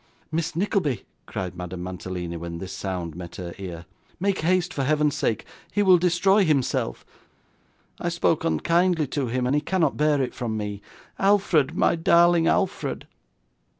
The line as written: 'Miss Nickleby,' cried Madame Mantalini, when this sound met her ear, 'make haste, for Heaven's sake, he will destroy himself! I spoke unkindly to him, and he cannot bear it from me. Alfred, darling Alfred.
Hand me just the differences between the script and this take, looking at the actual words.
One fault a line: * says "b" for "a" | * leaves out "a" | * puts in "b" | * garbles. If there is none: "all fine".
* puts in "my"